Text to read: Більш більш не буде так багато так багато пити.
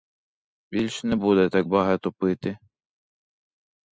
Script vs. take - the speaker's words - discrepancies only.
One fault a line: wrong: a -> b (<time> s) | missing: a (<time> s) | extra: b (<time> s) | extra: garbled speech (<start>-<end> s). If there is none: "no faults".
missing: більш (1.0 s)
missing: так багато (2.1 s)